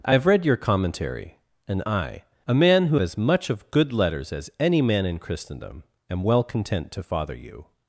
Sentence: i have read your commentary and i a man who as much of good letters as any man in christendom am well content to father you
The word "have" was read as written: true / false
true